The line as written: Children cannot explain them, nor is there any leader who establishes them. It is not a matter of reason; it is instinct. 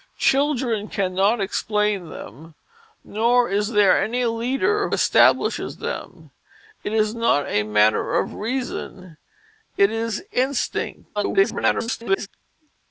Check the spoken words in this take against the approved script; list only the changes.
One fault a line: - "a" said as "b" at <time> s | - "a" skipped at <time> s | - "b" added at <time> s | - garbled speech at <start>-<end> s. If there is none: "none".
- "who" skipped at 4.9 s
- garbled speech at 11.2-12.3 s